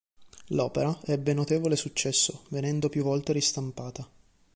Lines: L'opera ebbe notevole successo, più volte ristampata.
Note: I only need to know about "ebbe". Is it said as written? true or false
true